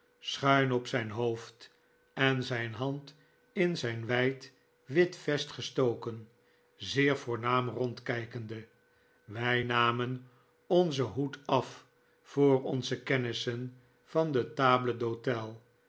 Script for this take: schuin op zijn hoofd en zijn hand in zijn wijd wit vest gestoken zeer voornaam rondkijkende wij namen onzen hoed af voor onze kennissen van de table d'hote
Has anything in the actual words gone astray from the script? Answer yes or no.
no